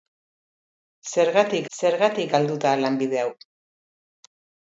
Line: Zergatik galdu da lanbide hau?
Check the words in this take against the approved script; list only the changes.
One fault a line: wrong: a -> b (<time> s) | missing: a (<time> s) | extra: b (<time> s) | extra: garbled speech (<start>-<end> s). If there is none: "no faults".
extra: zergatik (1.8 s)